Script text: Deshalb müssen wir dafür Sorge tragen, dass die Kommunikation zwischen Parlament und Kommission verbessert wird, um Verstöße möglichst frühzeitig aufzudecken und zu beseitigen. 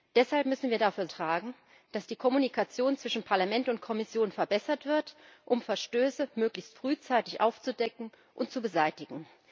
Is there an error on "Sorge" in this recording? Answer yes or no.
yes